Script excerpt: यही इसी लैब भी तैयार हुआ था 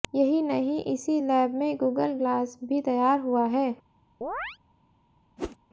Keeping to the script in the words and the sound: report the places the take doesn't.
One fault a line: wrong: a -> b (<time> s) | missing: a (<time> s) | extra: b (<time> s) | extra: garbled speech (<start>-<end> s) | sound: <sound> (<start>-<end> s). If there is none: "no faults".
extra: नहीं (0.4 s)
extra: में गूगल ग्लास (1.5 s)
wrong: था -> है (3.5 s)
sound: chirp (4.2-4.6 s)
sound: whoosh (5.4-5.6 s)